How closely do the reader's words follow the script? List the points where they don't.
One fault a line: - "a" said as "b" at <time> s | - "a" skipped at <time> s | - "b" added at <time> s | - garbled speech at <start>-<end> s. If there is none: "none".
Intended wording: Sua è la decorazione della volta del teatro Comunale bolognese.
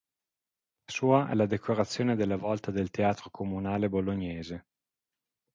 none